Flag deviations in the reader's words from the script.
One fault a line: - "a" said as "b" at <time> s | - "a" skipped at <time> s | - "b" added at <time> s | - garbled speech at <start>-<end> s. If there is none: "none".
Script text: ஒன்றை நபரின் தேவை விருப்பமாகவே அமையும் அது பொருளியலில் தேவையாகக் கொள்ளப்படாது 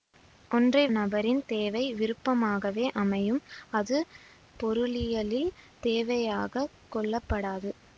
none